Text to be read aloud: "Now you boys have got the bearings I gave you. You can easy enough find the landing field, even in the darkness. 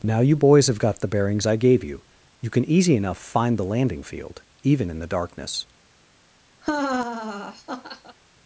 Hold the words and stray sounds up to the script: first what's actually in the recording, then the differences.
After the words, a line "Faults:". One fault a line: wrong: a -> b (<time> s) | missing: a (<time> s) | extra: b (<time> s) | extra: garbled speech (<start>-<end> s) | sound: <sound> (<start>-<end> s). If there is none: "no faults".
"Now you boys have got the bearings I gave you. You can easy enough find the landing field, even in the darkness.
Faults:
sound: laugh (6.6-8.2 s)